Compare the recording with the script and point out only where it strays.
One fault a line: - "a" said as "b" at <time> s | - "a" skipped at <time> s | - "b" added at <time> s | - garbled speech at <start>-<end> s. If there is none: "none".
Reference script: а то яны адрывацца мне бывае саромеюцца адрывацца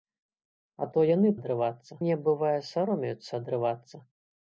none